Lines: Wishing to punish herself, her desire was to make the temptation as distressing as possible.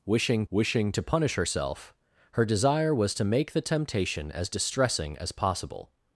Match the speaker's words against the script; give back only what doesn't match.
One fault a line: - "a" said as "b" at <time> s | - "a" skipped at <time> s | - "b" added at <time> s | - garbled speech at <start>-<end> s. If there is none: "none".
- "wishing" added at 0.5 s